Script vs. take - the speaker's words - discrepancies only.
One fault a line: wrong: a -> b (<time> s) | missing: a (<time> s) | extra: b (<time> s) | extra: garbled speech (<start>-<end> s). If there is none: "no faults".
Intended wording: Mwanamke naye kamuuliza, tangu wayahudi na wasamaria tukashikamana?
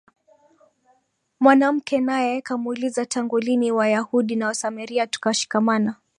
extra: lini (3.4 s)